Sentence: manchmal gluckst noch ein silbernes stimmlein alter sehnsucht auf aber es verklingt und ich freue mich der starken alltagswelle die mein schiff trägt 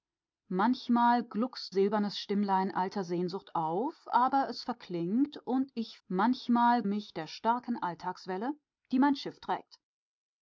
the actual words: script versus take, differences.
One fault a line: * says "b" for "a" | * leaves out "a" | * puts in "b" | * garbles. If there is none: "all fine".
* leaves out "noch ein"
* says "manchmal" for "freue"